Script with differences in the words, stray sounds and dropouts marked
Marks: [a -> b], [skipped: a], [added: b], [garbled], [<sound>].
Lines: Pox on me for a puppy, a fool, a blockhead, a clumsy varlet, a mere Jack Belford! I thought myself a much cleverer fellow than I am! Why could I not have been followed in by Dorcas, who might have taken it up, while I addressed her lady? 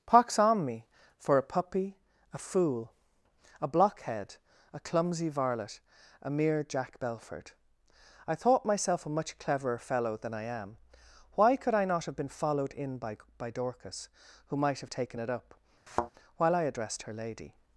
Pox on me for a puppy, a fool, a blockhead, a clumsy varlet, a mere Jack Belford! I thought myself a much cleverer fellow than I am! Why could I not have been followed in by [added: by] Dorcas, who might have taken it up, [thud] while I addressed her lady?